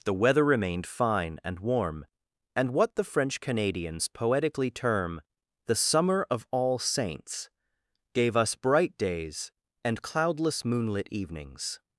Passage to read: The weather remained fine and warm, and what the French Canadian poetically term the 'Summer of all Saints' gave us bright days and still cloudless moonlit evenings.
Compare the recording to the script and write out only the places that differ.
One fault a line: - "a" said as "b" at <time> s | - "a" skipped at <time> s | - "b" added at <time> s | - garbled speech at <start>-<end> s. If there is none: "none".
- "Canadian" said as "Canadians" at 3.4 s
- "still" skipped at 10.0 s